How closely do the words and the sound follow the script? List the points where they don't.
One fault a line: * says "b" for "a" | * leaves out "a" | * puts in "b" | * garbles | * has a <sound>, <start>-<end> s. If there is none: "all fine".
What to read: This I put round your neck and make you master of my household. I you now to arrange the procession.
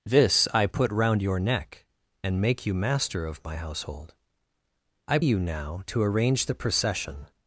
all fine